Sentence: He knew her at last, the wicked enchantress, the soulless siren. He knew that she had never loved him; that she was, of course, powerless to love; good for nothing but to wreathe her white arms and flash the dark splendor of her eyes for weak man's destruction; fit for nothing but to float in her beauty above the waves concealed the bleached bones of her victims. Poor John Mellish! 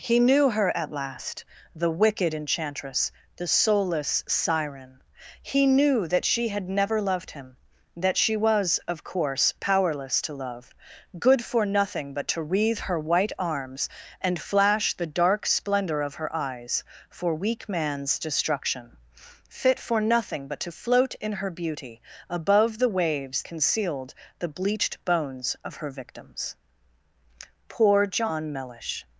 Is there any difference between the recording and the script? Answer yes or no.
no